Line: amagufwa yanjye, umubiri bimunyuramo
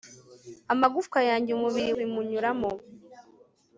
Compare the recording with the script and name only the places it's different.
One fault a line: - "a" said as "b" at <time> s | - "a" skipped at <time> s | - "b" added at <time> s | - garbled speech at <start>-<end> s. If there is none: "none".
none